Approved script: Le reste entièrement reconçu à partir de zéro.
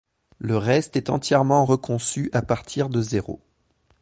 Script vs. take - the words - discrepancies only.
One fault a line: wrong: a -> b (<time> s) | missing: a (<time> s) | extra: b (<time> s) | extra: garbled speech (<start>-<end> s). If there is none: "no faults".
extra: est (1.0 s)